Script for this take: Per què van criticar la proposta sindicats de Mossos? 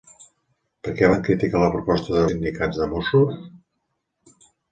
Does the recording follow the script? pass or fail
pass